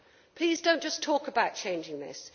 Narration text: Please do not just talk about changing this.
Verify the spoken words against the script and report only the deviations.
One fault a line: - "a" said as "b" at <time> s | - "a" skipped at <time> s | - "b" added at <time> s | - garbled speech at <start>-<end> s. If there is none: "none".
none